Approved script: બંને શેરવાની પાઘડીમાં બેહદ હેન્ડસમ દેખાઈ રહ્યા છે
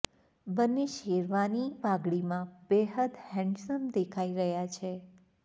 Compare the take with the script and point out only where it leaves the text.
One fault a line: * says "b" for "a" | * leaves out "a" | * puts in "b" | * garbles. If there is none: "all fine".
all fine